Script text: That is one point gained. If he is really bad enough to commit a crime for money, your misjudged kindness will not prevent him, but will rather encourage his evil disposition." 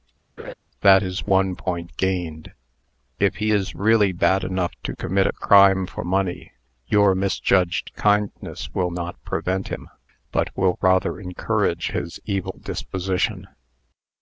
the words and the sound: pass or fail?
fail